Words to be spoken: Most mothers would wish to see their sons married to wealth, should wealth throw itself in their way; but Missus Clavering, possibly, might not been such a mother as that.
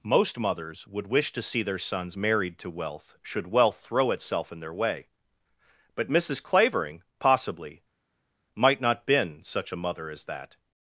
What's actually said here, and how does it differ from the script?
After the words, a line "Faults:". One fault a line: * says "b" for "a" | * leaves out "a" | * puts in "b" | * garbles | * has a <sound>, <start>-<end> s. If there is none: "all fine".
Most mothers would wish to see their sons married to wealth, should wealth throw itself in their way; but Missus Clavering, possibly, might not been such a mother as that.
Faults:
all fine